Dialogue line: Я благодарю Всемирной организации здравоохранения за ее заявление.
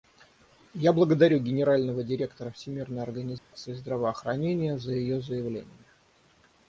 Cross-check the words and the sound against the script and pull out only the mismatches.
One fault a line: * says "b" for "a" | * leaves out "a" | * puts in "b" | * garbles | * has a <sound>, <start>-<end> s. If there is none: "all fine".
* puts in "Генерального директора"
* has a dropout, 3.4-3.5 s